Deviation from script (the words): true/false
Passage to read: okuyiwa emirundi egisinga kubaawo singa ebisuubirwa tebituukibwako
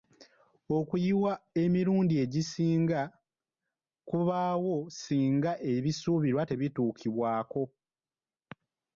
false